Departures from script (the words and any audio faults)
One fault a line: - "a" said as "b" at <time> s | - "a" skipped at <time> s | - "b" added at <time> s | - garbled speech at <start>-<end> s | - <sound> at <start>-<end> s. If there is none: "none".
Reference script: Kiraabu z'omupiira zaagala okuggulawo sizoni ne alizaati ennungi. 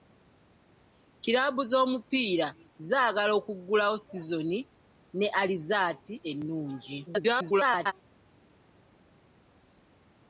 - garbled speech at 7.1-7.9 s